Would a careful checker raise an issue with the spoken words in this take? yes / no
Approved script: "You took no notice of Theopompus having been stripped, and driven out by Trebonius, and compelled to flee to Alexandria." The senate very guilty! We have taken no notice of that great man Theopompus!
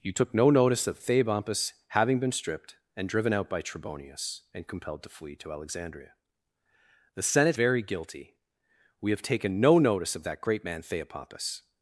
no